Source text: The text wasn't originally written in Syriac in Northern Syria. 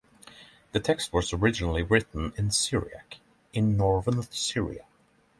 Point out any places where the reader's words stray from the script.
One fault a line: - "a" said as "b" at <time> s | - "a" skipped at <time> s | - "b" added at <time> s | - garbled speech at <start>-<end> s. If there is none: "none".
- "wasn't" said as "was" at 1.1 s